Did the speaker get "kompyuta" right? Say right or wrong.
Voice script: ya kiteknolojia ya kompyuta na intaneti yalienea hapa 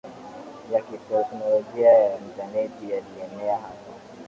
wrong